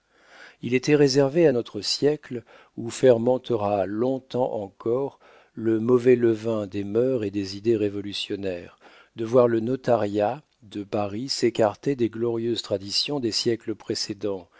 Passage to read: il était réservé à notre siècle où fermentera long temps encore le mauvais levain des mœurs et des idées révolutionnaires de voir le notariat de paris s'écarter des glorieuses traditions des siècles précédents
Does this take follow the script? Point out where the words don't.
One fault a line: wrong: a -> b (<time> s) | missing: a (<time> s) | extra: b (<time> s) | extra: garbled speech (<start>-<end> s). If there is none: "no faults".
no faults